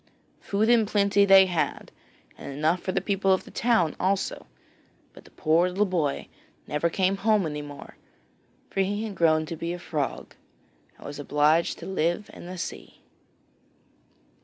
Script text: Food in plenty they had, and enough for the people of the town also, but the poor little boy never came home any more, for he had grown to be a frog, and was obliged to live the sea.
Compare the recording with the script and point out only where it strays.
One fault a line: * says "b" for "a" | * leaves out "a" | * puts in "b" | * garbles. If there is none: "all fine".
* puts in "in"